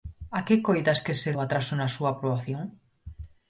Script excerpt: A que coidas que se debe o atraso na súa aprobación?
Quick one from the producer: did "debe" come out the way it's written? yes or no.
no